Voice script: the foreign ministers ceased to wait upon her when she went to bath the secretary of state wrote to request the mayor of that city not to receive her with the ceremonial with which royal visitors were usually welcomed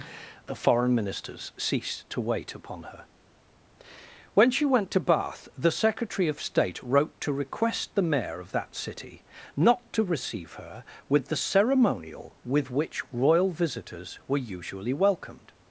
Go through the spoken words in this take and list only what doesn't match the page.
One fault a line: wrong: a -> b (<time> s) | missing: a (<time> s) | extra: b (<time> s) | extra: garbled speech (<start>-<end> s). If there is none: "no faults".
no faults